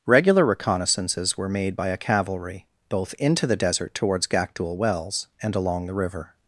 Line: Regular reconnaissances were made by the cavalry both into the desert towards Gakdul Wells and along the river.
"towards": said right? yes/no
yes